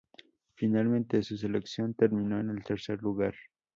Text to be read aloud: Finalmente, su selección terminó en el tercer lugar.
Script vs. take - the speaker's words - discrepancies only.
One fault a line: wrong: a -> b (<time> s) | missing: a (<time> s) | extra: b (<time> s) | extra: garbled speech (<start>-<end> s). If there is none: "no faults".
no faults